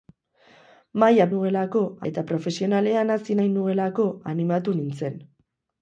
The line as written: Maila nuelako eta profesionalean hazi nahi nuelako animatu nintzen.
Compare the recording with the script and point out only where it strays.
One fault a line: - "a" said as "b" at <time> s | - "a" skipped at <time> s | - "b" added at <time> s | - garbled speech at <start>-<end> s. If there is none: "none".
none